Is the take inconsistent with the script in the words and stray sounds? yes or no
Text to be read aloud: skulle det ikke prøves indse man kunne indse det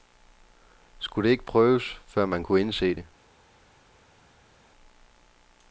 yes